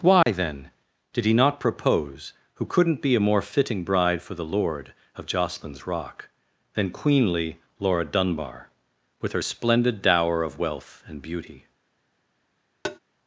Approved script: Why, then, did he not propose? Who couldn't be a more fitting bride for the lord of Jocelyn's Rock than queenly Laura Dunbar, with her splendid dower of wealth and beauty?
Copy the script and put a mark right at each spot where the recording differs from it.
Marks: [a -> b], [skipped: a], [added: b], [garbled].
Why, then, did he not propose? Who couldn't be a more fitting bride for the lord of Jocelyn's Rock than queenly Laura Dunbar, with her splendid dower of wealth and beauty?